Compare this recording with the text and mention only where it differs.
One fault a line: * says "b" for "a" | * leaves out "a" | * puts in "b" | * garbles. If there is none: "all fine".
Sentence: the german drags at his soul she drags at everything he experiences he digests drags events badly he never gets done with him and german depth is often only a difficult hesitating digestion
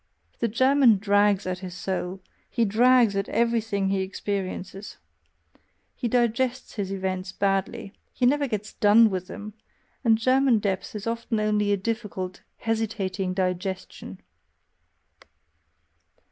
* says "he" for "she"
* says "his" for "drags"
* says "them" for "him"